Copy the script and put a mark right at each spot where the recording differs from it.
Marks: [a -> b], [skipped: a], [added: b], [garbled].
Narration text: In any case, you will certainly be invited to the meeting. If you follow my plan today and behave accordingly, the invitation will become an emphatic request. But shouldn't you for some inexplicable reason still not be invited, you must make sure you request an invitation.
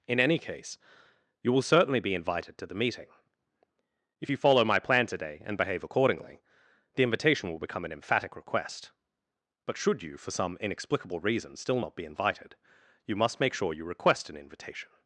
In any case, you will certainly be invited to the meeting. If you follow my plan today and behave accordingly, the invitation will become an emphatic request. But [shouldn't -> should] you for some inexplicable reason still not be invited, you must make sure you request an invitation.